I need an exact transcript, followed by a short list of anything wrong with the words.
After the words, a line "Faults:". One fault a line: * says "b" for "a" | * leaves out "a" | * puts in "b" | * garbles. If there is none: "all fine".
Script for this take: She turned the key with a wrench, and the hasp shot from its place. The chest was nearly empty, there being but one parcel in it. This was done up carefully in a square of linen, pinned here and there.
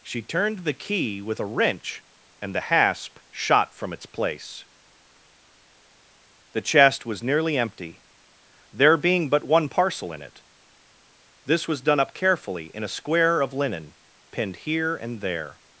She turned the key with a wrench, and the hasp shot from its place. The chest was nearly empty, there being but one parcel in it. This was done up carefully in a square of linen, pinned here and there.
Faults:
all fine